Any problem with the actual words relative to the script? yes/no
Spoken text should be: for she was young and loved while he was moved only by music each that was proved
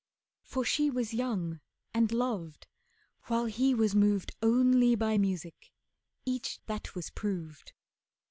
no